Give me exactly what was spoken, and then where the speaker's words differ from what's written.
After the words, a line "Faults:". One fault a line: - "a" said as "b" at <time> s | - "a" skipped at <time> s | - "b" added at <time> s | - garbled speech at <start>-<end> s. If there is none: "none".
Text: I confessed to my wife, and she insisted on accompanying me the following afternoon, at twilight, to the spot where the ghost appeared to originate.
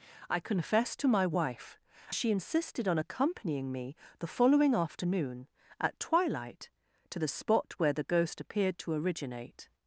I confessed to my wife, she insisted on accompanying me the following afternoon, at twilight, to the spot where the ghost appeared to originate.
Faults:
- "and" skipped at 1.8 s